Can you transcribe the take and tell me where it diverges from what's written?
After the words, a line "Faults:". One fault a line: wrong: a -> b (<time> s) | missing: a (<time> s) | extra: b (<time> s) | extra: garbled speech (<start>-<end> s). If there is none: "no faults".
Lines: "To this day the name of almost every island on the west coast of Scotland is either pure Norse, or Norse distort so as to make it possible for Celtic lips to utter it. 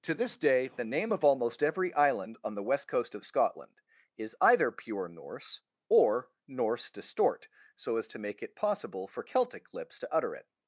"To this day the name of almost every island on the west coast of Scotland is either pure Norse, or Norse distort so as to make it possible for Celtic lips to utter it.
Faults:
no faults